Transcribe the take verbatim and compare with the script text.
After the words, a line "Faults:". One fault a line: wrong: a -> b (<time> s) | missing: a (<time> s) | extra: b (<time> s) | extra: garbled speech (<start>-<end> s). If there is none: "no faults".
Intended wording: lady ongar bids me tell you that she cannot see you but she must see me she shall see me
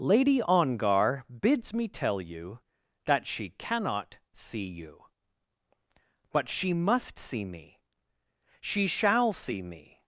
lady ongar bids me tell you that she cannot see you but she must see me she shall see me
Faults:
no faults